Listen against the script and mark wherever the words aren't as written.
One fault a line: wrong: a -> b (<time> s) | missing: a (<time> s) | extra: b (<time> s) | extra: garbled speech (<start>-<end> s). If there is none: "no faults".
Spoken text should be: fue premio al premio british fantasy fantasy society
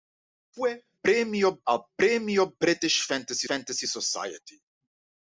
no faults